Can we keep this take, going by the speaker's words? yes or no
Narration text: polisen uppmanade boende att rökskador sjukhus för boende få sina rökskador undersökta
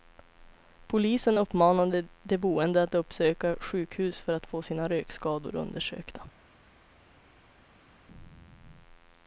no